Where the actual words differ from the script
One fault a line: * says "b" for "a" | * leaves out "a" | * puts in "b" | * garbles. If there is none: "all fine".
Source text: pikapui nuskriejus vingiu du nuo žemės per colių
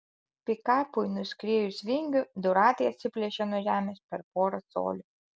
* puts in "ratai atsiplėšė"
* puts in "porą"